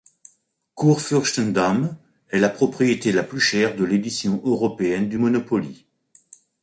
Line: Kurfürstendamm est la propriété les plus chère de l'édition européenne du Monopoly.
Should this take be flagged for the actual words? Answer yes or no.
yes